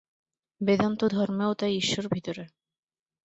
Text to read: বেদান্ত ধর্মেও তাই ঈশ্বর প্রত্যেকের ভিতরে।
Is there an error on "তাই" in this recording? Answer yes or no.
no